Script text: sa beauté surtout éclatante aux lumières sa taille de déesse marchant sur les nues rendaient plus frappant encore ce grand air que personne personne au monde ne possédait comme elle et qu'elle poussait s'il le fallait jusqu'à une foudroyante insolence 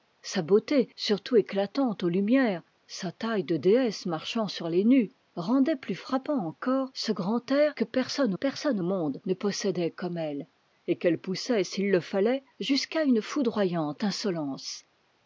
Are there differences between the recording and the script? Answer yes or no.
no